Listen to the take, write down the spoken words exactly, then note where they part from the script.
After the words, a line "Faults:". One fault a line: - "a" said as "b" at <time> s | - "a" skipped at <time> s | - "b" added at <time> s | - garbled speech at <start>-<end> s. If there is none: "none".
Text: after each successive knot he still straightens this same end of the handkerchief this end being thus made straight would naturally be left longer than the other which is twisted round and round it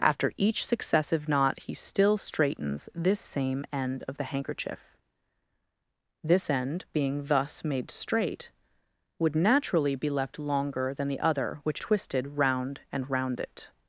after each successive knot he still straightens this same end of the handkerchief this end being thus made straight would naturally be left longer than the other which twisted round and round it
Faults:
- "is" skipped at 11.8 s